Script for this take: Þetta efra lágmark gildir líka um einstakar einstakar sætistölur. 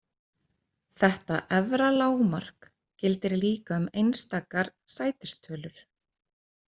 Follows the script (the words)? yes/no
no